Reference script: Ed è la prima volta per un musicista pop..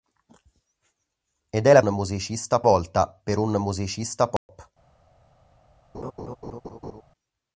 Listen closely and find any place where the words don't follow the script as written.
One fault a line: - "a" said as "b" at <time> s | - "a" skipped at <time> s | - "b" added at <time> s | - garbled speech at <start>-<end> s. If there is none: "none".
- "prima" said as "musicista" at 1.8 s